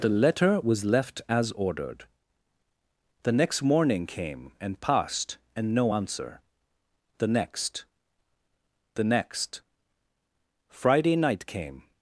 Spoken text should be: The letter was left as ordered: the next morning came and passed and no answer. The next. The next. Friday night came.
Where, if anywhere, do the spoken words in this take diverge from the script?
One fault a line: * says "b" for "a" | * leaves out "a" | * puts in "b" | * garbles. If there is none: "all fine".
all fine